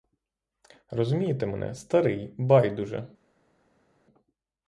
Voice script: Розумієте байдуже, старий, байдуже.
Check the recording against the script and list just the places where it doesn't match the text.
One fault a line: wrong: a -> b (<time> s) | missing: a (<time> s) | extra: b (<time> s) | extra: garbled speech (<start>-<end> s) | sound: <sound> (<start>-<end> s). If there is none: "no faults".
wrong: байдуже -> мене (1.4 s)